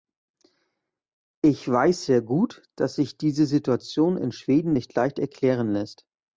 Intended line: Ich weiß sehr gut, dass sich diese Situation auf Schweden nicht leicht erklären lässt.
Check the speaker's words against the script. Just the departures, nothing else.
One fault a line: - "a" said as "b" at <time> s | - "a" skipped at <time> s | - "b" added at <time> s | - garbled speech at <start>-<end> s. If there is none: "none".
- "auf" said as "in" at 4.2 s